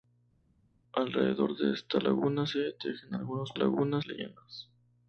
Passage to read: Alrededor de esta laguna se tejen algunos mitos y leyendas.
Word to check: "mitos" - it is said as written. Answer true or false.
false